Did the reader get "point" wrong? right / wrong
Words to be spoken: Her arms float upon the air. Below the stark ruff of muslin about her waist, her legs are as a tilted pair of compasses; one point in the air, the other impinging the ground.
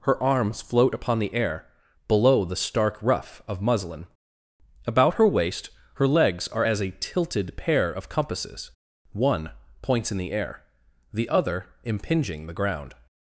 wrong